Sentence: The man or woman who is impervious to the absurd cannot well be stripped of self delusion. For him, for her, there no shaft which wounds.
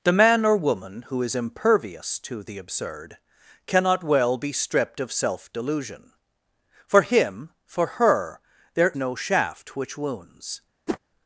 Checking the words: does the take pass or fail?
pass